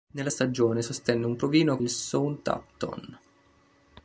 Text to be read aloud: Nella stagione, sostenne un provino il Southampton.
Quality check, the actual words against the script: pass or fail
pass